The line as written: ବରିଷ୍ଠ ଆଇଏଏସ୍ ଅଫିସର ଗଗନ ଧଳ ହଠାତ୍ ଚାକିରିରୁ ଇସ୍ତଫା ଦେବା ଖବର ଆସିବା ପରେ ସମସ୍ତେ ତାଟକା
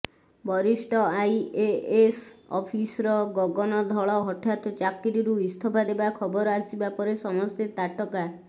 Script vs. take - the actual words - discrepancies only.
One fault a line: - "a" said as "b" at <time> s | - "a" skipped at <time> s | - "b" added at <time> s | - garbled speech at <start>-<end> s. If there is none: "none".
none